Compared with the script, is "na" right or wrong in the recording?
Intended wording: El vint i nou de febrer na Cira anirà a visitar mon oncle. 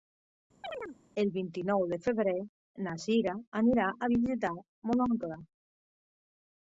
right